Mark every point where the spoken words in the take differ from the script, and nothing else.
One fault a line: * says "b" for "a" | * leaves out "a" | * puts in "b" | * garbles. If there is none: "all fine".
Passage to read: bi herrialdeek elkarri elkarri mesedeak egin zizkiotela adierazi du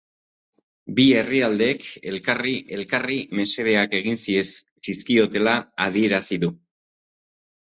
all fine